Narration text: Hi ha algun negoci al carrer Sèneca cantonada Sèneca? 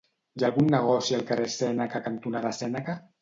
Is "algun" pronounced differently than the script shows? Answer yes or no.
no